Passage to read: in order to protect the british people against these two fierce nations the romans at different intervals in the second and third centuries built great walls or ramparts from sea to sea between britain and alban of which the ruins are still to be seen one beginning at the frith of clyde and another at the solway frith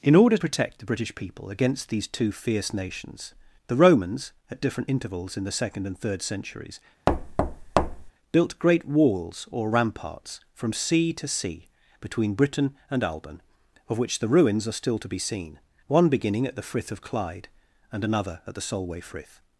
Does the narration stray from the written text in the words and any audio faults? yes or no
yes